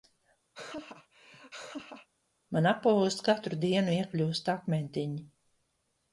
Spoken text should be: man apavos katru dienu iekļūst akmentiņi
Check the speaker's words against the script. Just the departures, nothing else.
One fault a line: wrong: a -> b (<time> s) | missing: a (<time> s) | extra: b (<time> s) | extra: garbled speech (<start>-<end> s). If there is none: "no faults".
no faults